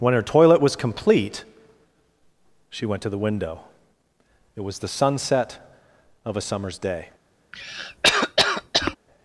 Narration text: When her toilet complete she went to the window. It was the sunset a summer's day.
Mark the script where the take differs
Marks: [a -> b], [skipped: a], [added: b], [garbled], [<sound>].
When her toilet [added: was] complete she went to the window. It was the sunset [added: of] a summer's day. [cough]